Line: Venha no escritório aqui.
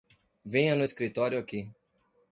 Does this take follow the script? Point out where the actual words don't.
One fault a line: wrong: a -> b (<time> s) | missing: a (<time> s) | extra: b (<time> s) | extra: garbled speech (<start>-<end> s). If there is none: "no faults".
no faults